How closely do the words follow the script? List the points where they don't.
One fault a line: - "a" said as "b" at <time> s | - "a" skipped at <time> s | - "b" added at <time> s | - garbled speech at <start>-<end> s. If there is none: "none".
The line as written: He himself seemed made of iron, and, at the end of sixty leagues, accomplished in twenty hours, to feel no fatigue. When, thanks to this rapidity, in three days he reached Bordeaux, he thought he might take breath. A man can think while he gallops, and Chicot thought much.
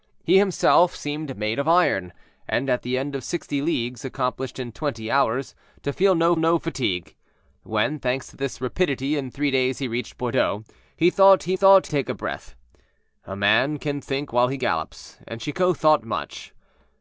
- "no" added at 6.4 s
- "might" said as "thought" at 11.5 s